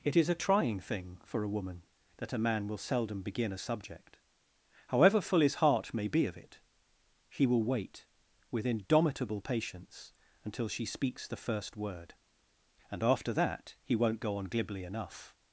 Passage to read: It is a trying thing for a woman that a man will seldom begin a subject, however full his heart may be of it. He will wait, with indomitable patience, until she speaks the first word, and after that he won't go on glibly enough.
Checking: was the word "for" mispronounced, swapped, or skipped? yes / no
no